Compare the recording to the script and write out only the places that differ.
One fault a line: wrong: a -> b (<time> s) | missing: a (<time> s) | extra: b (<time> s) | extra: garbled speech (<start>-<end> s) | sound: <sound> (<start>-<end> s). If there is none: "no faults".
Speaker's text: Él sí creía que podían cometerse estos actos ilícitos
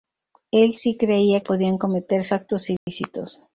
missing: que (1.4 s)
missing: estos (2.3 s)
sound: dropout (2.8-2.9 s)